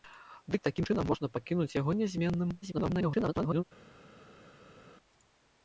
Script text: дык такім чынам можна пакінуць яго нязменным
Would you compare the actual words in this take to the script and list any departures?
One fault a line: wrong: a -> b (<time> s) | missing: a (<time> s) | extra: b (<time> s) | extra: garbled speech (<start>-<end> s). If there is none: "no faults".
extra: garbled speech (2.6-3.6 s)